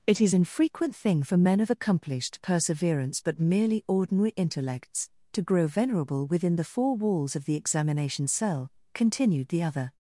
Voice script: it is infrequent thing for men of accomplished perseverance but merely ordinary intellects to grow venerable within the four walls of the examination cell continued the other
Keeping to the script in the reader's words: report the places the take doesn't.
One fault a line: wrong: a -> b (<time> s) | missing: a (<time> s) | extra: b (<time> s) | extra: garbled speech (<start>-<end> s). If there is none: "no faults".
no faults